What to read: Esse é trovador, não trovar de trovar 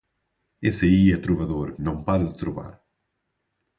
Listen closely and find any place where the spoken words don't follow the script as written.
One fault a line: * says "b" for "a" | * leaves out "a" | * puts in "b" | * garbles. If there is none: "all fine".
* puts in "aí"
* says "para" for "trovar"